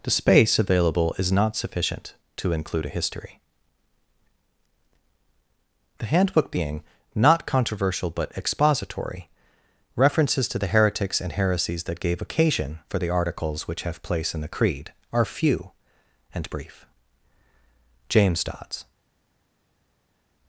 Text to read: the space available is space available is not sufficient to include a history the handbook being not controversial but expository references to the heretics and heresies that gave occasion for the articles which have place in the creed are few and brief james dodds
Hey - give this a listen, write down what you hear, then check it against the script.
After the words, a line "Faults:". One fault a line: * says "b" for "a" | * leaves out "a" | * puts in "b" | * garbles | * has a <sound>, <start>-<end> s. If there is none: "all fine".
the space available is not sufficient to include a history the handbook being not controversial but expository references to the heretics and heresies that gave occasion for the articles which have place in the creed are few and brief james dodds
Faults:
* leaves out "space available is"